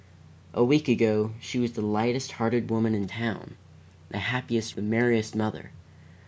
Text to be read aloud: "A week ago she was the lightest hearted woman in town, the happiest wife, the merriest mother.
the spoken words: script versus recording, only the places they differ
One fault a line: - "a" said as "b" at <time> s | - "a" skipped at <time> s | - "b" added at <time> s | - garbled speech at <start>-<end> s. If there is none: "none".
- "wife" skipped at 4.8 s